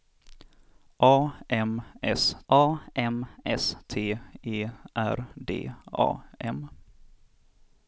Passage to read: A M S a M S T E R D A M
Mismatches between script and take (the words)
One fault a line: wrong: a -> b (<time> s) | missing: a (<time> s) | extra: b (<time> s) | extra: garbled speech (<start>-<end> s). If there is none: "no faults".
no faults